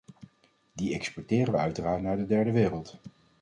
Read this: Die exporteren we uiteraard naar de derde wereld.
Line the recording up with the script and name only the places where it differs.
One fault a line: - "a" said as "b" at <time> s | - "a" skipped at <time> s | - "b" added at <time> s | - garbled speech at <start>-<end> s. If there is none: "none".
none